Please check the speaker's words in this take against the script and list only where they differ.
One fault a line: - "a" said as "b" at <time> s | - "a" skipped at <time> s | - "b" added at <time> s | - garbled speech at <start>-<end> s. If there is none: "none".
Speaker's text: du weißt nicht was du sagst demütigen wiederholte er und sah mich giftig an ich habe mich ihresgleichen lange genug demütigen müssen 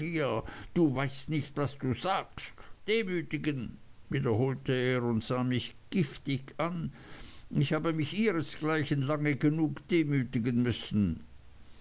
none